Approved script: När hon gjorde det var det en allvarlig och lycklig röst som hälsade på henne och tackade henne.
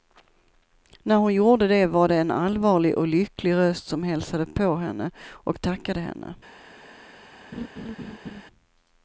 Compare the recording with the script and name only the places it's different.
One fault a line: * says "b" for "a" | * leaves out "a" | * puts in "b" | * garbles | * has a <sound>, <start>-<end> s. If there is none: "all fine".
* has a laugh, 7.5-8.4 s